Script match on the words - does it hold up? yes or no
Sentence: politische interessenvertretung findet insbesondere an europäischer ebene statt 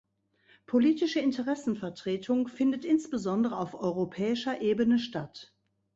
no